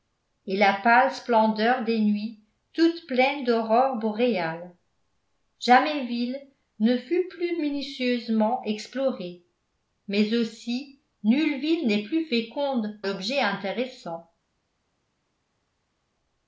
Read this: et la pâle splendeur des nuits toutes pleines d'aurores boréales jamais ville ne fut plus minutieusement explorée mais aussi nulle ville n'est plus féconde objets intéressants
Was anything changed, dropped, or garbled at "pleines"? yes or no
no